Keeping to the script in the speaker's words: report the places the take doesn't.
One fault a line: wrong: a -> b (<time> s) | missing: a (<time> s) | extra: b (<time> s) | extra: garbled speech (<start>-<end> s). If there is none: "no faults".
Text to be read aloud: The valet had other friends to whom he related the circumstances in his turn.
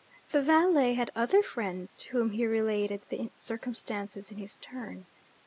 no faults